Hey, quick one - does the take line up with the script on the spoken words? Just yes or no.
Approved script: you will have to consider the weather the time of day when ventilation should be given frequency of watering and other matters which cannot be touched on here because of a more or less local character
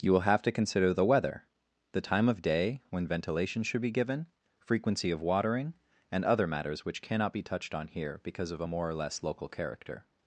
yes